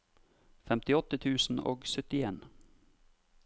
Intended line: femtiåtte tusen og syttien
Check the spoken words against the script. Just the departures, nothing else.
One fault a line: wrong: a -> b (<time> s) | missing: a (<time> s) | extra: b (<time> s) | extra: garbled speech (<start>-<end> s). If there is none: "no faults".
no faults